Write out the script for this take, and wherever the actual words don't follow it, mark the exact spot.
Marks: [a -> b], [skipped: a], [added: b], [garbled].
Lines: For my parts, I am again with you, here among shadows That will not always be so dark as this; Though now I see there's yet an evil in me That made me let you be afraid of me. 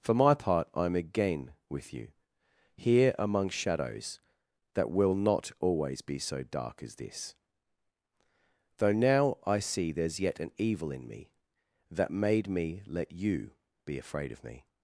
For my [parts, -> part] I am again with you, here among shadows That will not always be so dark as this; Though now I see there's yet an evil in me That made me let you be afraid of me.